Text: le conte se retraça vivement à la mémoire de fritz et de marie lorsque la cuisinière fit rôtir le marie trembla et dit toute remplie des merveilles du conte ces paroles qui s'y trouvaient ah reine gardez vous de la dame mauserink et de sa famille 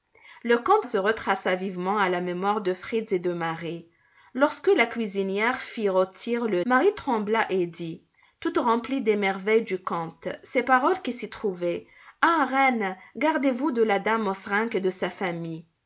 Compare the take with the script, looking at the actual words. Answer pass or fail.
pass